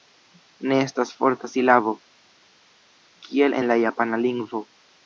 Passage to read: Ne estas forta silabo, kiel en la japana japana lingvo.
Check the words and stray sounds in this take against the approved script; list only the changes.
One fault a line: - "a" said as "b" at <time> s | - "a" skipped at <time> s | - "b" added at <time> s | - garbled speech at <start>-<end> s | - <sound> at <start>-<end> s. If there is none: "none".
- "japana" skipped at 4.2 s